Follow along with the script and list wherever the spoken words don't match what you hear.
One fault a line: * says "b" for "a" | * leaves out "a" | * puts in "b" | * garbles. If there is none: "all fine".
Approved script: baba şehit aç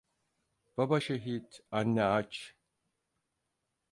* puts in "anne"